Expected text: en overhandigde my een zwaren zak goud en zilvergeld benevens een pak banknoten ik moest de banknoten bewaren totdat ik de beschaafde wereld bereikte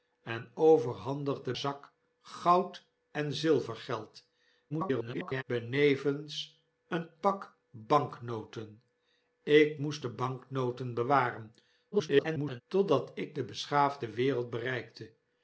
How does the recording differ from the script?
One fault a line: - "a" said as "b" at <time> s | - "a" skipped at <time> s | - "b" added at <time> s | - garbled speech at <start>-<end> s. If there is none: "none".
- "my een zwaren" skipped at 1.5 s
- garbled speech at 4.7-5.4 s
- garbled speech at 11.9-12.6 s